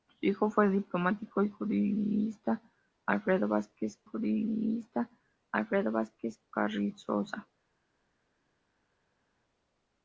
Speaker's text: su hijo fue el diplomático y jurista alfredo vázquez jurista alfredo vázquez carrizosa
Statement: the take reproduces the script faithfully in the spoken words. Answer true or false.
true